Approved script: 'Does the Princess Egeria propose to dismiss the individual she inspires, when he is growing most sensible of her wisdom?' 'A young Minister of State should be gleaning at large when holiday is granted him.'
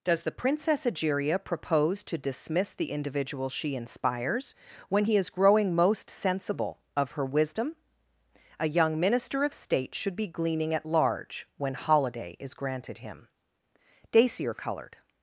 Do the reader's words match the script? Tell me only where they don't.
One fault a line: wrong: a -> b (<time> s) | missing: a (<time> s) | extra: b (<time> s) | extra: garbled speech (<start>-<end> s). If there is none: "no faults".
extra: Dacier coloured (14.1 s)